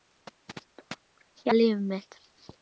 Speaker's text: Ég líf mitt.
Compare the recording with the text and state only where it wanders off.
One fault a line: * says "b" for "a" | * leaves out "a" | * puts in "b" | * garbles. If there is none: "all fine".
all fine